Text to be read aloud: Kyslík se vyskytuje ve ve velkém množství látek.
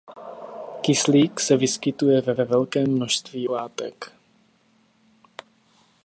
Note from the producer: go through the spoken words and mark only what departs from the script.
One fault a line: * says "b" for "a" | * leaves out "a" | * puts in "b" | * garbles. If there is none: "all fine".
all fine